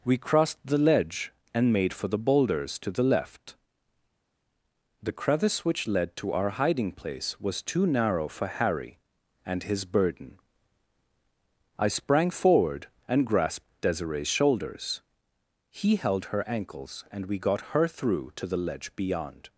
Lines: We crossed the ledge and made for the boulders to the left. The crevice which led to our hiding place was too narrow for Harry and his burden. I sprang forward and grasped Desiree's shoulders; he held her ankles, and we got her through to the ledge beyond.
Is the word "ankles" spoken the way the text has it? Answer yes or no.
yes